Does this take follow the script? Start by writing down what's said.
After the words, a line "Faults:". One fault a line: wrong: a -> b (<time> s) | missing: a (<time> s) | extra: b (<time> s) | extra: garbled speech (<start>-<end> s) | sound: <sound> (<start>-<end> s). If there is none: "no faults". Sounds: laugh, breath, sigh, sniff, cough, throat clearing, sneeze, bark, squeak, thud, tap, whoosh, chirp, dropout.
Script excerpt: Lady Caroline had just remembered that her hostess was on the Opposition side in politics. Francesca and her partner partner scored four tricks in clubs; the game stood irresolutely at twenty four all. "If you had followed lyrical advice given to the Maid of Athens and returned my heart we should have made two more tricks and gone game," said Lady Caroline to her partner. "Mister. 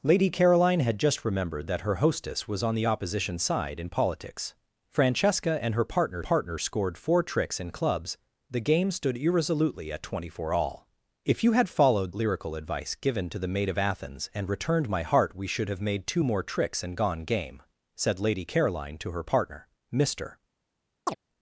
Lady Caroline had just remembered that her hostess was on the Opposition side in politics. Francesca and her partner partner scored four tricks in clubs; the game stood irresolutely at twenty four all. "If you had followed lyrical advice given to the Maid of Athens and returned my heart we should have made two more tricks and gone game," said Lady Caroline to her partner. "Mister.
Faults:
sound: chirp (21.1-21.2 s)